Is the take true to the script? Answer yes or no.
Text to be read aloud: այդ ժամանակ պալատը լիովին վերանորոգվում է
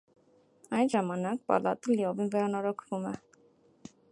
yes